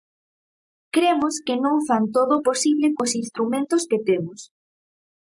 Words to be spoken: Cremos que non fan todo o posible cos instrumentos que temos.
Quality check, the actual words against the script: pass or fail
pass